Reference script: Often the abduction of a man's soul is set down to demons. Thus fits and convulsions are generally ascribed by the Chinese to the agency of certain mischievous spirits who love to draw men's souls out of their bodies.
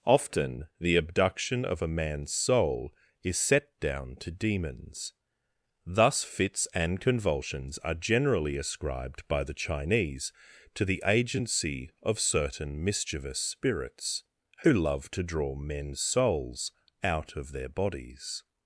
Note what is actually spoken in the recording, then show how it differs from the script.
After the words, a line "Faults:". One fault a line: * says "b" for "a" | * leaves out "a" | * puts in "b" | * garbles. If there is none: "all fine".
Often the abduction of a man's soul is set down to demons. Thus fits and convulsions are generally ascribed by the Chinese to the agency of certain mischievous spirits who love to draw men's souls out of their bodies.
Faults:
all fine